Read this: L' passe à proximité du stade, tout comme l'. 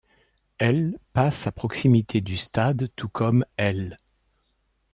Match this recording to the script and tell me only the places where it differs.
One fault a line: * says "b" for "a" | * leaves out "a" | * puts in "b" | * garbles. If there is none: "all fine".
all fine